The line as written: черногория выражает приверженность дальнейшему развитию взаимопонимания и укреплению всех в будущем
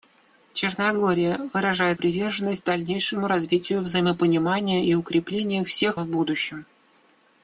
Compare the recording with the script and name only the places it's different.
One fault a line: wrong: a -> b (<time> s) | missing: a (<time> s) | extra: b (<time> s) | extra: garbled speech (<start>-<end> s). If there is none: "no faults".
no faults